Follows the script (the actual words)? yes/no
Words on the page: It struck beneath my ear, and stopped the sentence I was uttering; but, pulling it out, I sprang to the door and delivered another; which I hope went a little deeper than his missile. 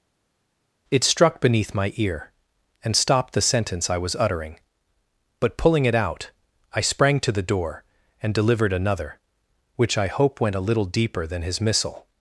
yes